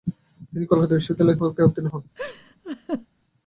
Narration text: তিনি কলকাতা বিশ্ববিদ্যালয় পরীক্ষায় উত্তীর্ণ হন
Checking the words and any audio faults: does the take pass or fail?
fail